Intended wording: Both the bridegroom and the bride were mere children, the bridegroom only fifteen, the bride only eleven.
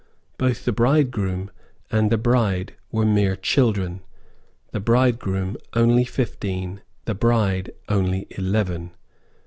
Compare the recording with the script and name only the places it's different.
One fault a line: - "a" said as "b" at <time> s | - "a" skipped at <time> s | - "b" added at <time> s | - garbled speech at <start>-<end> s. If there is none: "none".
none